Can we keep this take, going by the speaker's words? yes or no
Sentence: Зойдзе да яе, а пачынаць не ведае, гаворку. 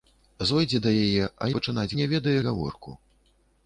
yes